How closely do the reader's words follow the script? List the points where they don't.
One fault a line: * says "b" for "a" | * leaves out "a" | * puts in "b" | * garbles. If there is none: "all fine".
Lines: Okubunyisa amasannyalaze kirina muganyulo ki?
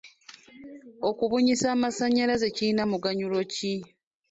all fine